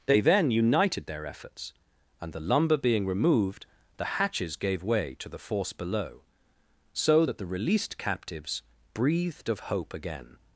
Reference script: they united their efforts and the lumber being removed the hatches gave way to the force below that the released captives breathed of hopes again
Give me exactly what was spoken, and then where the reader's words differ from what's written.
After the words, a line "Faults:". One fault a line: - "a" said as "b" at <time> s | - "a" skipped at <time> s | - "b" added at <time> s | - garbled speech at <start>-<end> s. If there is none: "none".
they then united their efforts and the lumber being removed the hatches gave way to the force below so that the released captives breathed of hope again
Faults:
- "then" added at 0.2 s
- "so" added at 6.9 s
- "hopes" said as "hope" at 9.6 s